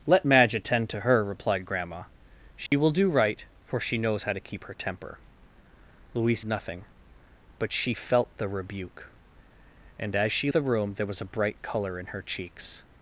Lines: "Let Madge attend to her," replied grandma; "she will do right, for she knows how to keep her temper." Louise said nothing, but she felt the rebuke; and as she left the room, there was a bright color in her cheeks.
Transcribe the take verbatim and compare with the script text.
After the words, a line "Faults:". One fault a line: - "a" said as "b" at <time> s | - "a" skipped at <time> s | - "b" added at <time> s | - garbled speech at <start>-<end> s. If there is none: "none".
"Let Madge attend to her," replied grandma; "she will do right, for she knows how to keep her temper." Louise nothing, but she felt the rebuke; and as she the room, there was a bright color in her cheeks.
Faults:
- "said" skipped at 6.4 s
- "left" skipped at 10.5 s